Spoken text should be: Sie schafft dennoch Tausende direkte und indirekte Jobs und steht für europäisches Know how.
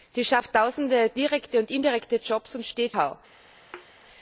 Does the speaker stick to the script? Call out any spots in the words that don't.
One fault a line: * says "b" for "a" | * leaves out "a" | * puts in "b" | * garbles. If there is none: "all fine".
* leaves out "dennoch"
* leaves out "für europäisches Know"